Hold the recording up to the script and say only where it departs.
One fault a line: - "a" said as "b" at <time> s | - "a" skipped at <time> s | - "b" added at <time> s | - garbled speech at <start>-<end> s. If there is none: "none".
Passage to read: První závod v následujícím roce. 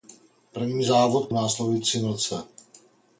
none